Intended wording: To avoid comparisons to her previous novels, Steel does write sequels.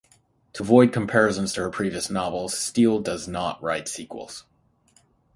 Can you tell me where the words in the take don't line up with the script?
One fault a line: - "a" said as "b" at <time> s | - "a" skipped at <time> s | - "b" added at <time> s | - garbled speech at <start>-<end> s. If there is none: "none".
- "not" added at 3.3 s